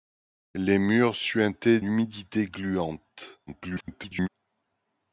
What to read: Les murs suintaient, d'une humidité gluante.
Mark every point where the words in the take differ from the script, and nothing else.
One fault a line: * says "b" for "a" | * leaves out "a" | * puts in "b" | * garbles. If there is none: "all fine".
* leaves out "d'une"
* garbles